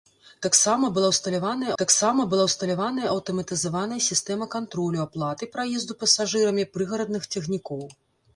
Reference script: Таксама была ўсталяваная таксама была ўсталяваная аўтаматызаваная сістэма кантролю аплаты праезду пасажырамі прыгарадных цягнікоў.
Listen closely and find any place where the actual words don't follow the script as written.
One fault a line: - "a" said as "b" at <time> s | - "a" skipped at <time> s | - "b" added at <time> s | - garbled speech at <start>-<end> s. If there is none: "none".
none